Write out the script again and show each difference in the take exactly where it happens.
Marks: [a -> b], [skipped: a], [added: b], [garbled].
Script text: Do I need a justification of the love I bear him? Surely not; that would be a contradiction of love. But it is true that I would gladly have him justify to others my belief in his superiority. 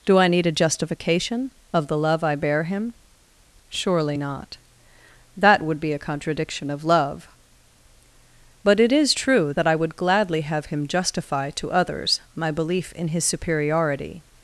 Do I need a justification of the love I bear him? Surely not; that would be a contradiction of love. But it is true that I would gladly have him justify to others my belief in his superiority.